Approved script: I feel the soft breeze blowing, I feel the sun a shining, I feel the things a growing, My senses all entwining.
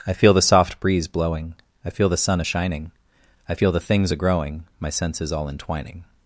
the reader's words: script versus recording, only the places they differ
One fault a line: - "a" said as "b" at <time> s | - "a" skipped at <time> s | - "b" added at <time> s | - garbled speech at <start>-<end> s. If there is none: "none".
none